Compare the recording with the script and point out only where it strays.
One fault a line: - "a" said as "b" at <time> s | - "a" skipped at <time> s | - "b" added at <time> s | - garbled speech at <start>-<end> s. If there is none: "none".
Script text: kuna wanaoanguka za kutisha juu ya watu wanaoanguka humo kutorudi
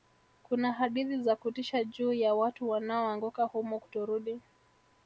- "wanaoanguka" said as "hadithi" at 0.7 s